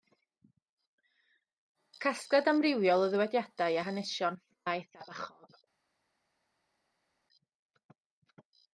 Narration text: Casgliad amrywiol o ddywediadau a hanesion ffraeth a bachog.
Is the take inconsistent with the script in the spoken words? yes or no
no